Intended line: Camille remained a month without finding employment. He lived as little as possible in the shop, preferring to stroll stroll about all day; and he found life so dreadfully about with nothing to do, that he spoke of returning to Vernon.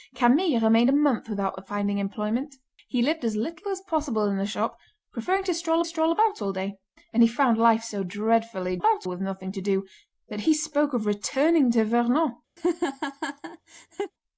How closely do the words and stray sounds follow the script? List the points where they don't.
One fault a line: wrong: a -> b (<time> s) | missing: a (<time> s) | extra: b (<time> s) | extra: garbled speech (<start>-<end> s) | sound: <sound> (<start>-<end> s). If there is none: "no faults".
sound: laugh (12.6-14.1 s)